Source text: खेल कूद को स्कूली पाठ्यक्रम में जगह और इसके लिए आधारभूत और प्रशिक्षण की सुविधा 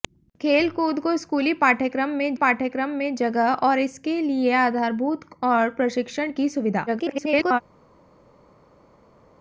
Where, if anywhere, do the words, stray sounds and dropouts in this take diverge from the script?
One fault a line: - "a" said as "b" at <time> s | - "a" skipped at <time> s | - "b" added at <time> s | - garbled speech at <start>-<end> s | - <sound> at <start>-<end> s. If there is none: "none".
- "पाठ्यक्रम में" added at 2.3 s
- garbled speech at 6.9-7.6 s